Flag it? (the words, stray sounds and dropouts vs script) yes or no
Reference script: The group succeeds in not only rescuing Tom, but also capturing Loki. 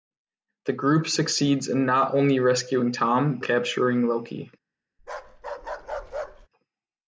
yes